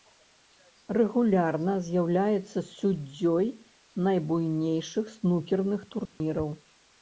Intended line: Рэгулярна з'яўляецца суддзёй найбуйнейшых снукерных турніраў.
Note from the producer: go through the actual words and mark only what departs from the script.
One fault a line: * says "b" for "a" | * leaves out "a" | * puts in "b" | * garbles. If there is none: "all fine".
all fine